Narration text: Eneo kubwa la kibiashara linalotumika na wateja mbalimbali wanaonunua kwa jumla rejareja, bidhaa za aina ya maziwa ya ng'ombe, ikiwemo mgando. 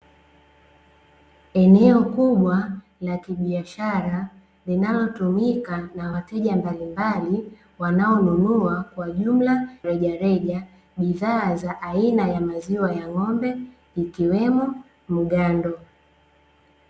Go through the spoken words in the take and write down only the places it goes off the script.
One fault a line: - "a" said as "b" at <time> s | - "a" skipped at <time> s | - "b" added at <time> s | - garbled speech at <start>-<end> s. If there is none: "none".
none